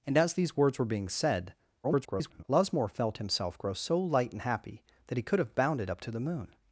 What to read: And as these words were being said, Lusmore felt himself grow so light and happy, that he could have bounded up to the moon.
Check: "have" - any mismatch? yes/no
no